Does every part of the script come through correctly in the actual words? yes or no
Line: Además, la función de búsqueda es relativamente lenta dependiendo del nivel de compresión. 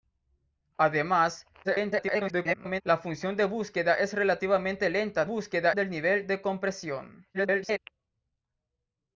no